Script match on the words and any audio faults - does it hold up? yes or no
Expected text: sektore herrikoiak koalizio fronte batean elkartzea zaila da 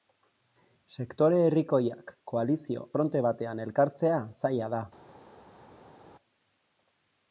yes